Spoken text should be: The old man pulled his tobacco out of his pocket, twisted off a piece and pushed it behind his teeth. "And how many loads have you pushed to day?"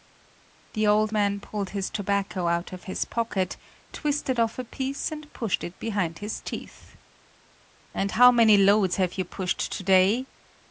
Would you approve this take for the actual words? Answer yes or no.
yes